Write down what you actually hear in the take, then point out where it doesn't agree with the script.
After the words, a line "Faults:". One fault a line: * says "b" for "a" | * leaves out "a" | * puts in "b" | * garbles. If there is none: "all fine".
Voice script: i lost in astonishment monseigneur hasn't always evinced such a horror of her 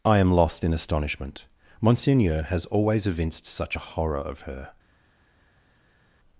i am lost in astonishment monseigneur has always evinced such a horror of her
Faults:
* puts in "am"
* says "has" for "hasn't"